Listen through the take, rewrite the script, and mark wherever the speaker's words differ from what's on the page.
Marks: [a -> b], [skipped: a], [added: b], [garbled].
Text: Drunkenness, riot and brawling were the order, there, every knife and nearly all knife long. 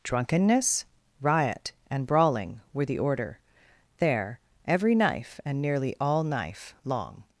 Drunkenness, riot and brawling were the order, there, every knife and nearly all knife long.